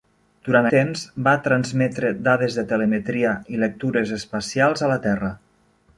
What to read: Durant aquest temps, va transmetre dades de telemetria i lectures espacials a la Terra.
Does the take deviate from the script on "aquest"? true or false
true